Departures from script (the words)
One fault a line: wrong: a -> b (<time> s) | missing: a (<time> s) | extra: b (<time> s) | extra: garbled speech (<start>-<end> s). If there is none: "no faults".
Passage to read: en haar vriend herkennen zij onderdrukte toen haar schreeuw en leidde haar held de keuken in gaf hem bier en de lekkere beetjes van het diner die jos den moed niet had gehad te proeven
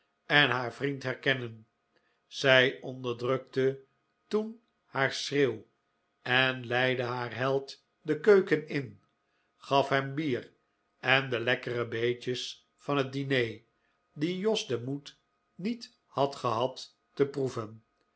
no faults